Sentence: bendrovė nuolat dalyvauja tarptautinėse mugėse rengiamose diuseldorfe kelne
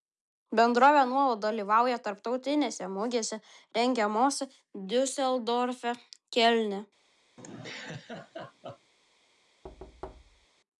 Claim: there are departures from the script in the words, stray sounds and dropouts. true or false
true